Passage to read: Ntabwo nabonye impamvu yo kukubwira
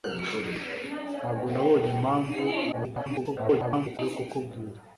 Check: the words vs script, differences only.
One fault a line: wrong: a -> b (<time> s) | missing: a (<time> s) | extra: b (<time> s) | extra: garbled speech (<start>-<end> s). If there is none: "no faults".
extra: garbled speech (2.7-4.0 s)